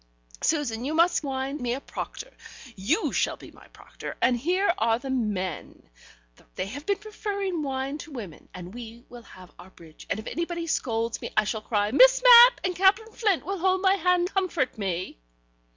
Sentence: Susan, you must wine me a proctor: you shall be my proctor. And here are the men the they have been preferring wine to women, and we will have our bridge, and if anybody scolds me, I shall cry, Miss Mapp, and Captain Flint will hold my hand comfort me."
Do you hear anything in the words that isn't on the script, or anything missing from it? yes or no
no